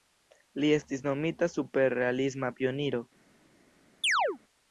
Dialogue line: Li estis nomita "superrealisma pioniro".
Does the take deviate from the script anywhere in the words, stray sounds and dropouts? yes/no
yes